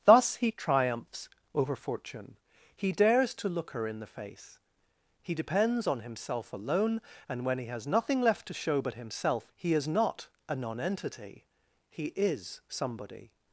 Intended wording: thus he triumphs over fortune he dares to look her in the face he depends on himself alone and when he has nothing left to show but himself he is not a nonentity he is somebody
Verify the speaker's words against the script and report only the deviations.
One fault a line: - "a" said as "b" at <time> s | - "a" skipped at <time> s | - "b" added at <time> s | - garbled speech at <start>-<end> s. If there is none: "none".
none